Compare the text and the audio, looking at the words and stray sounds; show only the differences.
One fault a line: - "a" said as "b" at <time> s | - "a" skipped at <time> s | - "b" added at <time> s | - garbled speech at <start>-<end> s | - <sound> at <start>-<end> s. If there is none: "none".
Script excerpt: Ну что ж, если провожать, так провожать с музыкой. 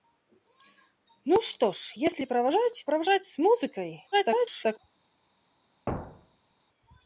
- "так" skipped at 2.9 s
- garbled speech at 4.1-4.8 s
- thud at 5.9-6.5 s